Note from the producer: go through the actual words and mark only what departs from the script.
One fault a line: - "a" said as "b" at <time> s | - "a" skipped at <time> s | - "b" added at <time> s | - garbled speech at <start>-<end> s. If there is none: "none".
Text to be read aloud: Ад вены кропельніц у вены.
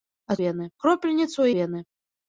none